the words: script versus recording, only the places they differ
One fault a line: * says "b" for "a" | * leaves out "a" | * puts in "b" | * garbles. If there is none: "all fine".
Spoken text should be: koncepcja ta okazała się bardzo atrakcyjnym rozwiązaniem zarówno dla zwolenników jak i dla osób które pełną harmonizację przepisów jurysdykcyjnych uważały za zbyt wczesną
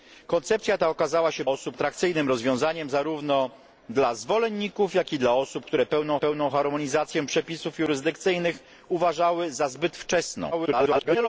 * says "osób" for "bardzo"
* puts in "pełną"
* garbles